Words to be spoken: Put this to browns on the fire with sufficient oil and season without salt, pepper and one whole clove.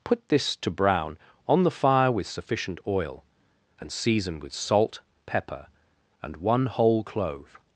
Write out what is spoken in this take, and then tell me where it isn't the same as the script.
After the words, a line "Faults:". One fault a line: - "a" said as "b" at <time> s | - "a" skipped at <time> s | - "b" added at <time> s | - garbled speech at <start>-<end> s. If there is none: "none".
Put this to brown on the fire with sufficient oil and season with salt, pepper and one whole clove.
Faults:
- "browns" said as "brown" at 0.7 s
- "without" said as "with" at 4.4 s